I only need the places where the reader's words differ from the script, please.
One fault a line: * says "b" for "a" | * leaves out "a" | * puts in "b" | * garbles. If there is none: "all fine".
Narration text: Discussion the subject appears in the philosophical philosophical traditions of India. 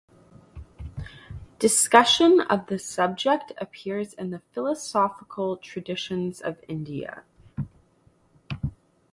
* puts in "of"
* leaves out "philosophical"